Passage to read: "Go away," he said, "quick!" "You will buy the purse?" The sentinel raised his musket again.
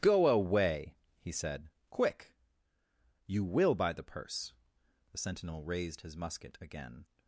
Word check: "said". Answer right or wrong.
right